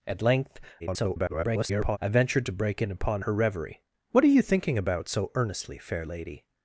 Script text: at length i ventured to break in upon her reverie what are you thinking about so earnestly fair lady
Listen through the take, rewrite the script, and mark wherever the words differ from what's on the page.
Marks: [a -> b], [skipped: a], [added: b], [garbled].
at length [garbled] i ventured to break in upon her reverie what are you thinking about so earnestly fair lady